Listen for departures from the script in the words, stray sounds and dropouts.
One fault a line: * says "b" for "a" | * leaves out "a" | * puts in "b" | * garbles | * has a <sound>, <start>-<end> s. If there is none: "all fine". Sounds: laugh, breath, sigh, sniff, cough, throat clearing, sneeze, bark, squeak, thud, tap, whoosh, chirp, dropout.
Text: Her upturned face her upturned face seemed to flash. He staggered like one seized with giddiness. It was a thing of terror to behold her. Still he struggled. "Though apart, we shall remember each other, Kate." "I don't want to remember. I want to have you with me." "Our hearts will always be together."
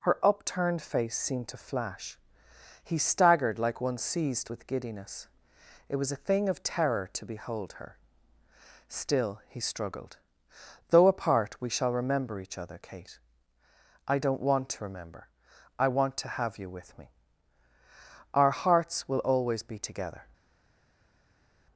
* leaves out "her upturned face"